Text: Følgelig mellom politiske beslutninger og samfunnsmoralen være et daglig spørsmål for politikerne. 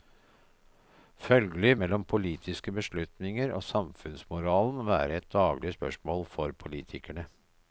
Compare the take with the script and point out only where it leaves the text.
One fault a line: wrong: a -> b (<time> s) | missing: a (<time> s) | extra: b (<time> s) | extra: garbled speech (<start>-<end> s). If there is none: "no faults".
no faults